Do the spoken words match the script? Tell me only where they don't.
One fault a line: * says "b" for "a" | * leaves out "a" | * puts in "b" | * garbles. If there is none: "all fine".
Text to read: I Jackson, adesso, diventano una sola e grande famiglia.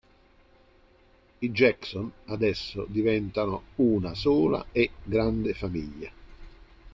all fine